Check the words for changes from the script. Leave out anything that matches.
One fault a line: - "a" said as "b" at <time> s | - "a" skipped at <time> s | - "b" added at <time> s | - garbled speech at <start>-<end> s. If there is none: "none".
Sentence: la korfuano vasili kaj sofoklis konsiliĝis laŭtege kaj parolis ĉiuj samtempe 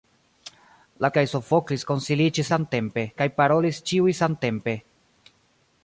- "korfuano vasili" skipped at 1.1 s
- "laŭtege" said as "samtempe" at 2.5 s